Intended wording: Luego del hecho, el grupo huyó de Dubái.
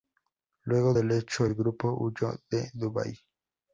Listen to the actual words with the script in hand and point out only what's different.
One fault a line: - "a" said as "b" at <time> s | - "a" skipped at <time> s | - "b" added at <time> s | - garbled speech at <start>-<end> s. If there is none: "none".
none